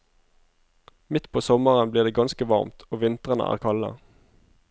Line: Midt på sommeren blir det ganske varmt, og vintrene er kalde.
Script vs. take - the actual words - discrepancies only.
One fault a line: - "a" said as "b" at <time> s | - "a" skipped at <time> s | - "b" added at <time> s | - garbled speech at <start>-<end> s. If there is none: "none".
none